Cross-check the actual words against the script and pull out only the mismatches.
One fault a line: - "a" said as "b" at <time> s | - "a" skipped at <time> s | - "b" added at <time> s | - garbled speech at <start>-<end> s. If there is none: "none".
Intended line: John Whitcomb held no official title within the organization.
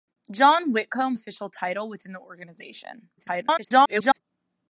- "held no" skipped at 1.2 s
- garbled speech at 3.2-4.2 s